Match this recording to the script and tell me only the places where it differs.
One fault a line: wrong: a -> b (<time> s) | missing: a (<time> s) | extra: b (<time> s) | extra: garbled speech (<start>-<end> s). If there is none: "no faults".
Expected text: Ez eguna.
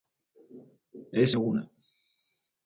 no faults